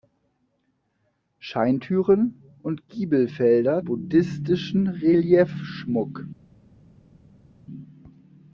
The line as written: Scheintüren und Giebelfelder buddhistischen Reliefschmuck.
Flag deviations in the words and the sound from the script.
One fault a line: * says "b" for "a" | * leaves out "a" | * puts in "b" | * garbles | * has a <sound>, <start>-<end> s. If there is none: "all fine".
all fine